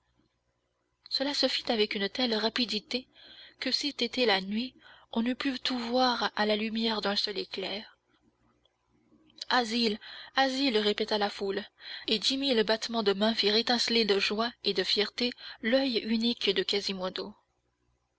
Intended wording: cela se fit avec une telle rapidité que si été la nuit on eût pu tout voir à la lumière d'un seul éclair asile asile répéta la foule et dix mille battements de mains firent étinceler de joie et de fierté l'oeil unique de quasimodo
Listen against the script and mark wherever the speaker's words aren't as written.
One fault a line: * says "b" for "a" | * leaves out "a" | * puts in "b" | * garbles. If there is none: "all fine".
all fine